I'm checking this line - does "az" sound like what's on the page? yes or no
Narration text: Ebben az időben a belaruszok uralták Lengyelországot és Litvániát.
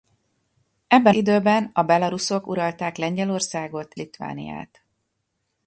no